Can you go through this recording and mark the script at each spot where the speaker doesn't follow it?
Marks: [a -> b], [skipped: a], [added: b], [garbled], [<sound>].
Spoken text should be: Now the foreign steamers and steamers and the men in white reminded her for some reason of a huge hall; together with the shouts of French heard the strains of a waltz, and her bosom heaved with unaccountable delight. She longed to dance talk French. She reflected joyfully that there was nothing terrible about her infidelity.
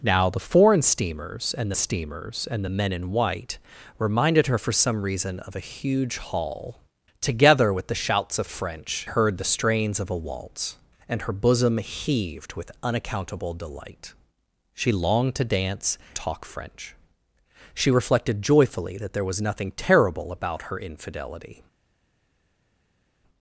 Now the foreign steamers and steamers and the men in white reminded her for some reason of a huge hall; together with the shouts of French heard the strains of a waltz, and her bosom heaved with unaccountable delight. She longed to dance talk French. She reflected joyfully that there was nothing terrible about her infidelity.